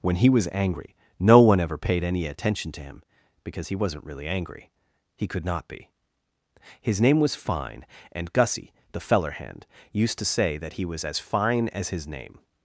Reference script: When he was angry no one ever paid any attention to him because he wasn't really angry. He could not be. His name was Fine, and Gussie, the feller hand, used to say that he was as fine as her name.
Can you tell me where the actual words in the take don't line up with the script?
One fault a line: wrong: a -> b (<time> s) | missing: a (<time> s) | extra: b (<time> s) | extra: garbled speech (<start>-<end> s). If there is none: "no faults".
wrong: her -> his (11.9 s)